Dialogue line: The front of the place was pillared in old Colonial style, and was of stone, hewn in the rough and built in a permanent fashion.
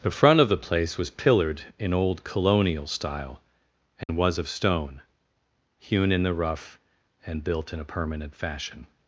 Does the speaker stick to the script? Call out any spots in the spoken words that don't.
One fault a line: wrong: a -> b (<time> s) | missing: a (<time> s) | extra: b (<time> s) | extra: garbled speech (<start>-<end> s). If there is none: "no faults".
no faults